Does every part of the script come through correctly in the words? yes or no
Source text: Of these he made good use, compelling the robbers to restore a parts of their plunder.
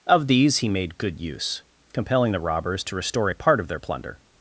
no